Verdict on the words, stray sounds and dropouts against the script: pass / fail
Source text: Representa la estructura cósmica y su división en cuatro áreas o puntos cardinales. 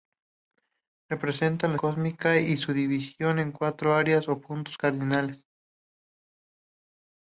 fail